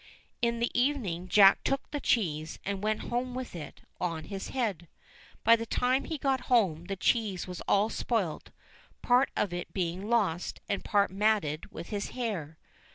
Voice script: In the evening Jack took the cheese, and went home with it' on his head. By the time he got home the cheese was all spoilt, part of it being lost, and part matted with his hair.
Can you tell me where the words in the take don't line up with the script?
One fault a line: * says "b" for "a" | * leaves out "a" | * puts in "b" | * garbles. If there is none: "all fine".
all fine